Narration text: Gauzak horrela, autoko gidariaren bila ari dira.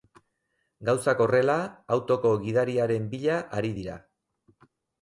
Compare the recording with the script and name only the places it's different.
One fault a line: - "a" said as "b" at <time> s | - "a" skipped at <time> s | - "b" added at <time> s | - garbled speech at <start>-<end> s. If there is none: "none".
none